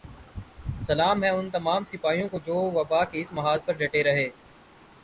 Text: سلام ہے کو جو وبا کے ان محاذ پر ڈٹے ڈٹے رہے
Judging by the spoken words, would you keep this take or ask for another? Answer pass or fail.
fail